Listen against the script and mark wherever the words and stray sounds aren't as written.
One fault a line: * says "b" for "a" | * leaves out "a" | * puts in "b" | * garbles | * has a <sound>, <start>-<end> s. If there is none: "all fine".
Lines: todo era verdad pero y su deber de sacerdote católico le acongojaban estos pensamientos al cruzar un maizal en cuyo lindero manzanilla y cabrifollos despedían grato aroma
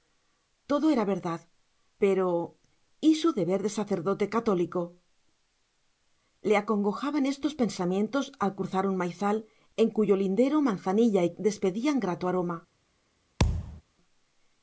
* leaves out "cabrifollos"
* has a thud, 13.4-13.8 s